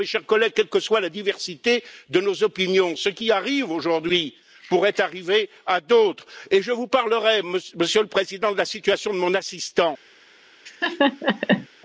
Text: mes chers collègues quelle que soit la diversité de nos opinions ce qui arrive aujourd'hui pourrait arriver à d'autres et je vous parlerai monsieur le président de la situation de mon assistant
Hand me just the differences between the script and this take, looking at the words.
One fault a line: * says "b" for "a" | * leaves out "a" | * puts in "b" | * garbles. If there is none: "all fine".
all fine